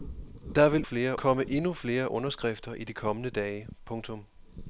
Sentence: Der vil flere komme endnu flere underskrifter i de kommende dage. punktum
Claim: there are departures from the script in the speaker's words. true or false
false